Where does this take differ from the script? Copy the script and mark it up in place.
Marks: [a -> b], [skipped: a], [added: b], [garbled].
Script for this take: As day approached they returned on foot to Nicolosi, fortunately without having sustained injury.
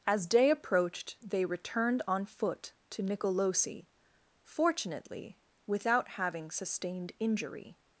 As day approached they returned on foot to Nicolosi, fortunately without having sustained injury.